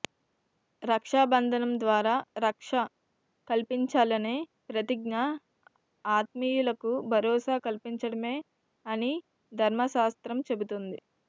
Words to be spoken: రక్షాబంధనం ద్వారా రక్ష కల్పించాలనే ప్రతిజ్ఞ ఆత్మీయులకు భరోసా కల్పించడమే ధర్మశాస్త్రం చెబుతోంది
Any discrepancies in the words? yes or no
yes